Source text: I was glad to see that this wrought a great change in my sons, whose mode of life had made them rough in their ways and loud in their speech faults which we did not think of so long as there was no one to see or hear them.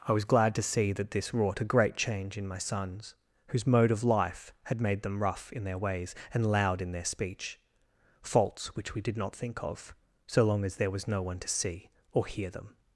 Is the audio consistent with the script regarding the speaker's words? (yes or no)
yes